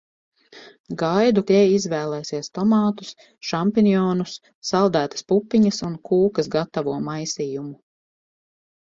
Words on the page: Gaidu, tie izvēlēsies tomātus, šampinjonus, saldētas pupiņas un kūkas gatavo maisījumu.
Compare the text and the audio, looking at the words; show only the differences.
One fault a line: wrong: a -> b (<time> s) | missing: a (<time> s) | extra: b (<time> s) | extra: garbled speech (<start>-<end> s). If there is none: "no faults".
no faults